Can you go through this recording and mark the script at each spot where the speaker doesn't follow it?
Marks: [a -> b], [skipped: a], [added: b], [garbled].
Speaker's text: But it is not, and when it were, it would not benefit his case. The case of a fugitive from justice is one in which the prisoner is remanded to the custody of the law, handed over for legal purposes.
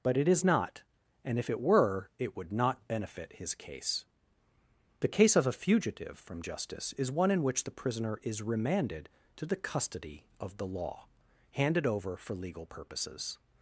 But it is not, and [when -> if] it were, it would not benefit his case. The case of a fugitive from justice is one in which the prisoner is remanded to the custody of the law, handed over for legal purposes.